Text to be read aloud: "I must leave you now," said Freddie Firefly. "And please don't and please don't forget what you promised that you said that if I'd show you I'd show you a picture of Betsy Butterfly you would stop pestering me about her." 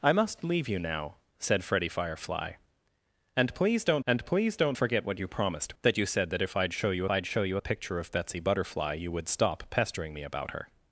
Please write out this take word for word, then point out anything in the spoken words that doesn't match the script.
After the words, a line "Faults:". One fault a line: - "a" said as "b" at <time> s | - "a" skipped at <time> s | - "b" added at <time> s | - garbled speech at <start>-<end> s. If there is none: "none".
"I must leave you now," said Freddie Firefly. "And please don't and please don't forget what you promised that you said that if I'd show you I'd show you a picture of Betsy Butterfly you would stop pestering me about her."
Faults:
none